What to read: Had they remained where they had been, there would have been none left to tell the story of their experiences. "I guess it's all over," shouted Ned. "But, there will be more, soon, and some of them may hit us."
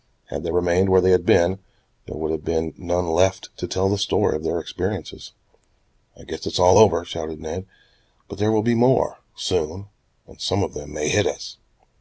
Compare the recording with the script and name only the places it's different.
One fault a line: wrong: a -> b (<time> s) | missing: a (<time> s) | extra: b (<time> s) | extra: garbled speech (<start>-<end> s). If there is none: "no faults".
no faults